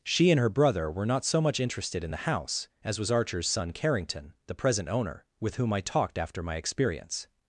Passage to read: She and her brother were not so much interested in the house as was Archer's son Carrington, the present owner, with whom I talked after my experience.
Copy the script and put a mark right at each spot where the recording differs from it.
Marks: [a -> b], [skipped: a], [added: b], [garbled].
She and her brother were not so much interested in the house as was Archer's son Carrington, the present owner, with whom I talked after my experience.